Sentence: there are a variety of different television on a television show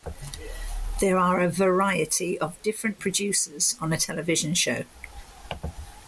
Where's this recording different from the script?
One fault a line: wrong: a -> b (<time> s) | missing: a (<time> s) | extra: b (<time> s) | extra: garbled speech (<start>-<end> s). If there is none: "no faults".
wrong: television -> producers (3.0 s)